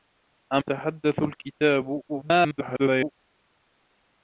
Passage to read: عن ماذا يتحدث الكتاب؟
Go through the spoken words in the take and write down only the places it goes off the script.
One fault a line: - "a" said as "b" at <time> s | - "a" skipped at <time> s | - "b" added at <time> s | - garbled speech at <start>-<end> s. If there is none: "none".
- "ماذا" skipped at 0.6 s
- garbled speech at 2.1-3.1 s